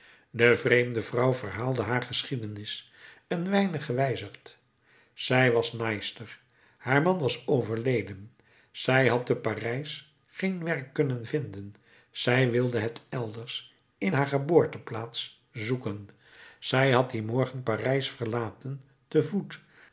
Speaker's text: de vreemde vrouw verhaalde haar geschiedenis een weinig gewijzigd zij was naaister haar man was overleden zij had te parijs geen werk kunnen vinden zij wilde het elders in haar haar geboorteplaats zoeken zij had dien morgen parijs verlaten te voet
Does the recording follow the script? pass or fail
fail